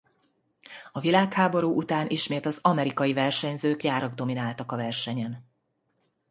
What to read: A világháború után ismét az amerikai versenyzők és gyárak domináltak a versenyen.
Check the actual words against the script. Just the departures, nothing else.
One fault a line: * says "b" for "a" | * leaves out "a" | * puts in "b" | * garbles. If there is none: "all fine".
* leaves out "és"